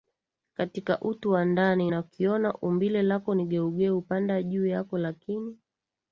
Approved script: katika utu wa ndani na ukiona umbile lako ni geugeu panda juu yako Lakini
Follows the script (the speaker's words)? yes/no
yes